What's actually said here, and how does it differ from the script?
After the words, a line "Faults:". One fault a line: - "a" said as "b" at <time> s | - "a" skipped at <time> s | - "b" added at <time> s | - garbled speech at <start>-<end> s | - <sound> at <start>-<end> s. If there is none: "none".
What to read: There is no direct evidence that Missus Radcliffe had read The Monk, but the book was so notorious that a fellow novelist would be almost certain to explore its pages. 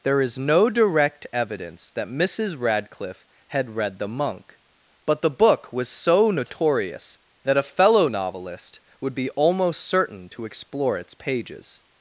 There is no direct evidence that Missus Radcliffe had read The Monk, but the book was so notorious that a fellow novelist would be almost certain to explore its pages.
Faults:
none